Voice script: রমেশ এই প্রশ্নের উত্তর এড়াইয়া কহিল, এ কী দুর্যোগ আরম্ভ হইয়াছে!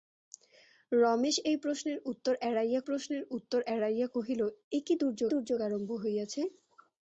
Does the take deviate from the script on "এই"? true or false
false